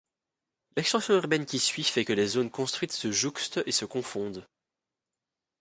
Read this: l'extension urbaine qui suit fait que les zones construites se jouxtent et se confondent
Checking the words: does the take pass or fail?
pass